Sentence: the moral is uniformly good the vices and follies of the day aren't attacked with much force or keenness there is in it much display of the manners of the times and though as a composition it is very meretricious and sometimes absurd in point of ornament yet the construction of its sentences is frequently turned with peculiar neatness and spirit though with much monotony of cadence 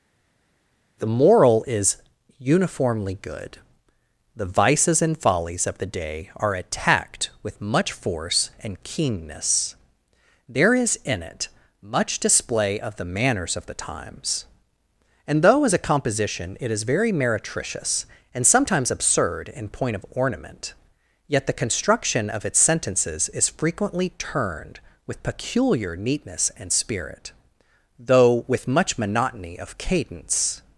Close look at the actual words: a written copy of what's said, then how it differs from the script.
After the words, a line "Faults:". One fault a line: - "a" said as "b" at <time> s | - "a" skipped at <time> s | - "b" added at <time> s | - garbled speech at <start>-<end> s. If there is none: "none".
the moral is uniformly good the vices and follies of the day are attacked with much force and keenness there is in it much display of the manners of the times and though as a composition it is very meretricious and sometimes absurd in point of ornament yet the construction of its sentences is frequently turned with peculiar neatness and spirit though with much monotony of cadence
Faults:
- "aren't" said as "are" at 6.3 s
- "or" said as "and" at 8.6 s